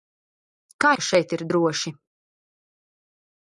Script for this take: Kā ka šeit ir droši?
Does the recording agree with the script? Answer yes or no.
yes